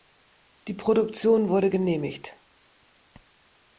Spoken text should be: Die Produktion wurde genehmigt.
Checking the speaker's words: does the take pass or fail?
pass